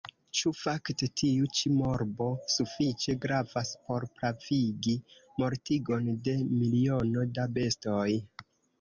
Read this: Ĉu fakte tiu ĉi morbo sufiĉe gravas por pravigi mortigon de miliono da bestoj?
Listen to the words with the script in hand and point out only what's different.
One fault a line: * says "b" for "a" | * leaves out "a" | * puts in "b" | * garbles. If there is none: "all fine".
all fine